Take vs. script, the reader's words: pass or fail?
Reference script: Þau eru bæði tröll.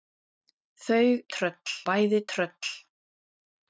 fail